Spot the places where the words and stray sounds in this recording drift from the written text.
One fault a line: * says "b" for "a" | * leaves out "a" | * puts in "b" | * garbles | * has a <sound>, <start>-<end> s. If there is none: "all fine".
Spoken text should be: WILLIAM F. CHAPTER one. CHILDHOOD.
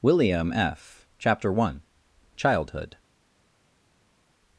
all fine